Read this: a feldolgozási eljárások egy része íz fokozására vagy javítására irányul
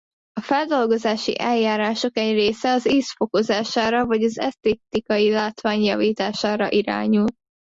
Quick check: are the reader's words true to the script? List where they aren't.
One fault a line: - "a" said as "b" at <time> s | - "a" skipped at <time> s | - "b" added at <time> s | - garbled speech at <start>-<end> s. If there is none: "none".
- "az" added at 2.7 s
- "az esztétikai látvány" added at 4.2 s